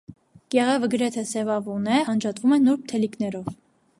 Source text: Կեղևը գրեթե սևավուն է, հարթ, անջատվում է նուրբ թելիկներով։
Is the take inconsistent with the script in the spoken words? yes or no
yes